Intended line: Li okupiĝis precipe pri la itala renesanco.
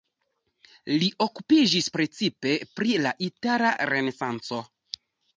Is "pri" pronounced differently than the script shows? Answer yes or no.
no